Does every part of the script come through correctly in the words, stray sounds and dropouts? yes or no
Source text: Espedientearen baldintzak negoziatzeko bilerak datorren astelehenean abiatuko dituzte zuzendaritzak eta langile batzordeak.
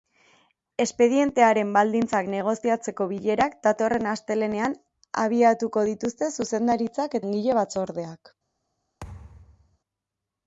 no